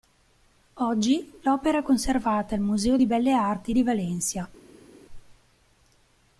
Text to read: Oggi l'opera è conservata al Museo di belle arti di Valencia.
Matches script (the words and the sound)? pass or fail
pass